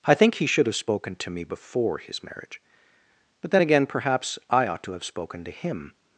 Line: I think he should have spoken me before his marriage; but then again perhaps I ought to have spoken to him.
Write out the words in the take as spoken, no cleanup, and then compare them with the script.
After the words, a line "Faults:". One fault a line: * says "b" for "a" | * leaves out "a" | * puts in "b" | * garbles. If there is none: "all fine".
I think he should have spoken to me before his marriage; but then again perhaps I ought to have spoken to him.
Faults:
* puts in "to"